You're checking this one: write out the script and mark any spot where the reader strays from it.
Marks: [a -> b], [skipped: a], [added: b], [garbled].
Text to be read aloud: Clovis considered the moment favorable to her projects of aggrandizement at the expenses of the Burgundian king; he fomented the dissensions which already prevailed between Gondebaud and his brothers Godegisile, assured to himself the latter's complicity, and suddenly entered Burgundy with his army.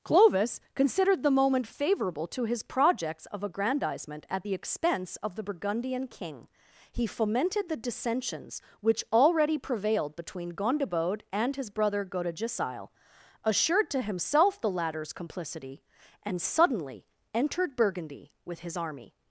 Clovis considered the moment favorable to [her -> his] projects of aggrandizement at the [expenses -> expense] of the Burgundian king; he fomented the dissensions which already prevailed between Gondebaud and his [brothers -> brother] Godegisile, assured to himself the latter's complicity, and suddenly entered Burgundy with his army.